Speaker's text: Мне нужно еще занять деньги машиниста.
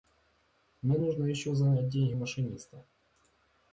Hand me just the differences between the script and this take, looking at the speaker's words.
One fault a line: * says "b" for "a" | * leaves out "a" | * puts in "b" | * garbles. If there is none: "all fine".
all fine